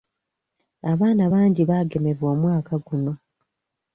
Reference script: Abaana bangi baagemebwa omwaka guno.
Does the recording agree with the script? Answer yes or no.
yes